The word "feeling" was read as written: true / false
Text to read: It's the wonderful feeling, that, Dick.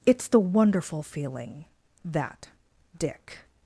true